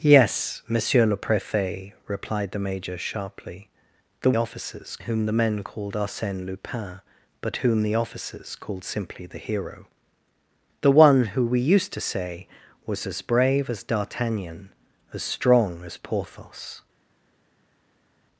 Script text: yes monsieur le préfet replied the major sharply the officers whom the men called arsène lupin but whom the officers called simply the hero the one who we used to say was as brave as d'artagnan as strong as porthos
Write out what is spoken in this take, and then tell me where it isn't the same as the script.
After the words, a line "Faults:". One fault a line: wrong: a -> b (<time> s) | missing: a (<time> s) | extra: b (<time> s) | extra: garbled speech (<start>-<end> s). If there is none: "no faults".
yes monsieur le préfet replied the major sharply the officers whom the men called arsène lupin but whom the officers called simply the hero the one who we used to say was as brave as d'artagnan as strong as porthos
Faults:
no faults